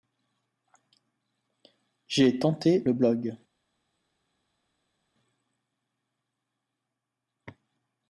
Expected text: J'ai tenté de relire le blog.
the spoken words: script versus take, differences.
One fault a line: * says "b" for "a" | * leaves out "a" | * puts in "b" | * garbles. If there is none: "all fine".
* leaves out "de relire"